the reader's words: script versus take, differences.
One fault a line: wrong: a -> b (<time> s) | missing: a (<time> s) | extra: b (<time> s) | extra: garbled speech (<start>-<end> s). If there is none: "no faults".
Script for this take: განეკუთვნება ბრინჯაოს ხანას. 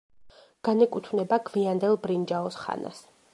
extra: გვიანდელ (1.5 s)